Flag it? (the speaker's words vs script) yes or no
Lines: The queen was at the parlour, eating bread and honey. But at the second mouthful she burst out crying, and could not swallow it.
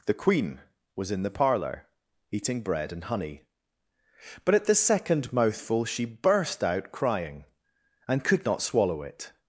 yes